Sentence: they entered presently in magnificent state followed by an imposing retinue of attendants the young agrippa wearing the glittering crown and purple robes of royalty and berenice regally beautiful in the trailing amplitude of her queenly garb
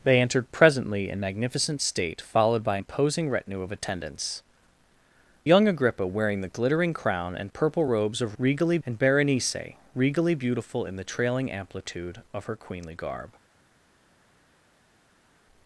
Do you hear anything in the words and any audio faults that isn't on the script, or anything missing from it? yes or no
yes